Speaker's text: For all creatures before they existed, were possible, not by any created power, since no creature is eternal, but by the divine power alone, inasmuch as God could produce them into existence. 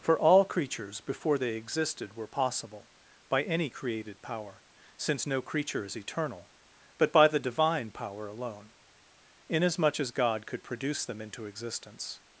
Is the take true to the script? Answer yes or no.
no